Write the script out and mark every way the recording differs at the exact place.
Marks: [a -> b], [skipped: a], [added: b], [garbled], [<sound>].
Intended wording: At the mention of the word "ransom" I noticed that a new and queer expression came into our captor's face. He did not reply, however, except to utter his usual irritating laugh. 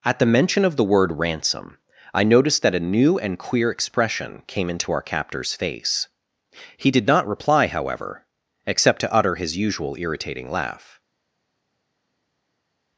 At the mention of the word "ransom" I noticed that a new and queer expression came into our captor's face. He did not reply, however, except to utter his usual irritating laugh.